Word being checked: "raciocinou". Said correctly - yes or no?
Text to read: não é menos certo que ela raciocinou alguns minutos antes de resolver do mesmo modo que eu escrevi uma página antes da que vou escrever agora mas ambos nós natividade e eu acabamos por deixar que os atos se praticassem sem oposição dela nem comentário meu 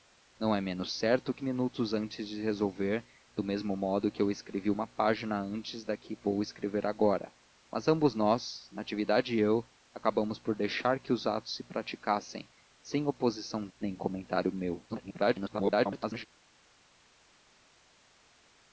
no